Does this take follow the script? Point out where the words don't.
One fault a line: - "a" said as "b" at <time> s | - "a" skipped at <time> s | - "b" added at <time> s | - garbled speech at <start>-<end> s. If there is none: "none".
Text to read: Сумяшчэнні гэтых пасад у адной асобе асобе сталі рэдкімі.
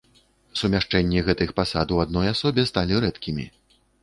- "асобе" skipped at 2.7 s